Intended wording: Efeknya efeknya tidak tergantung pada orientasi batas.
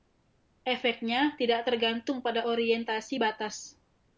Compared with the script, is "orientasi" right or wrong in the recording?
right